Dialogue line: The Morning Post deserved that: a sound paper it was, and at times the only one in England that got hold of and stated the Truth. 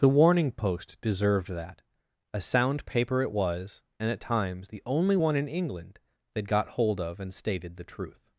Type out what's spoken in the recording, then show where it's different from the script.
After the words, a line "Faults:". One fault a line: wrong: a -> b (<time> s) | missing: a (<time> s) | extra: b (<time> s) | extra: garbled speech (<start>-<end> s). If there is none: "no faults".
The Warning Post deserved that: a sound paper it was, and at times the only one in England that got hold of and stated the Truth.
Faults:
wrong: Morning -> Warning (0.2 s)